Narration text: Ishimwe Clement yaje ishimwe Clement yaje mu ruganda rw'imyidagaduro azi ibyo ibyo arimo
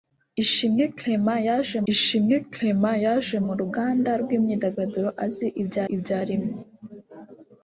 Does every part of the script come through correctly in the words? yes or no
yes